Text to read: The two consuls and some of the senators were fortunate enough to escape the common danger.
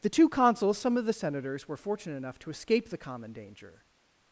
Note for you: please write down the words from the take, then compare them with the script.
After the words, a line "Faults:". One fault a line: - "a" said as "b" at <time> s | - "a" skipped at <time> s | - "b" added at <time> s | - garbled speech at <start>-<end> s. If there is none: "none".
The two consuls some of the senators were fortunate enough to escape the common danger.
Faults:
- "and" skipped at 0.8 s